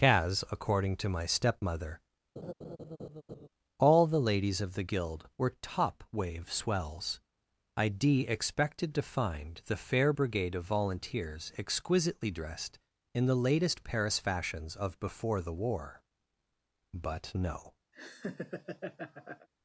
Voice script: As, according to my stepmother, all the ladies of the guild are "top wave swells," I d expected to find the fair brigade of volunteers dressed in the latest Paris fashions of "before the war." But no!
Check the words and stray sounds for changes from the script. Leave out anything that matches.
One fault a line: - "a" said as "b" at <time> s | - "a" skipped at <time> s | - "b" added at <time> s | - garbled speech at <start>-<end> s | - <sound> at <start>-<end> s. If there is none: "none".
- laugh at 2.4-3.5 s
- "are" said as "were" at 5.4 s
- "exquisitely" added at 11.6 s
- laugh at 17.9-19.5 s